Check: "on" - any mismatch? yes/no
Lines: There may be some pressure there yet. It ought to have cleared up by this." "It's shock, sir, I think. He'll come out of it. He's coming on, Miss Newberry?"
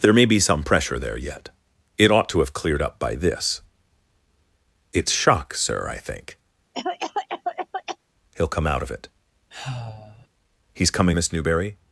yes